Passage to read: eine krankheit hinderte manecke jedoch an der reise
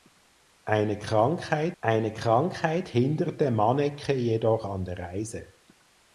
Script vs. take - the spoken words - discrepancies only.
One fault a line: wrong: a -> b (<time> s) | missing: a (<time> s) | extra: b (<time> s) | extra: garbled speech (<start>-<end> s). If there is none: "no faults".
extra: eine krankheit (1.8 s)